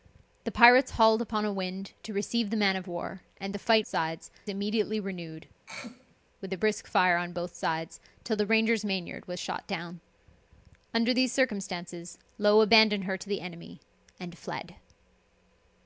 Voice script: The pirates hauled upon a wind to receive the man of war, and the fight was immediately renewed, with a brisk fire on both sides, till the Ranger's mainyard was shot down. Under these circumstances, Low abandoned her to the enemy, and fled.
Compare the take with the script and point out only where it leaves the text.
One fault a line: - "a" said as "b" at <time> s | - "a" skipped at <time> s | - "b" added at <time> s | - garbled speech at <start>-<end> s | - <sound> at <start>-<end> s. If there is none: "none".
- "was" said as "sides" at 3.9 s
- throat clearing at 5.7-6.2 s